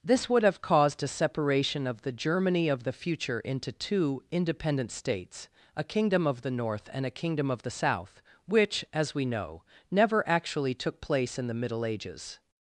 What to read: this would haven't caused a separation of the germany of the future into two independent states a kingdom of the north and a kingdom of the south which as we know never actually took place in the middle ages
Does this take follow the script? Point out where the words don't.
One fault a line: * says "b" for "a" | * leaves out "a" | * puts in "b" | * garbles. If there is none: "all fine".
* says "have" for "haven't"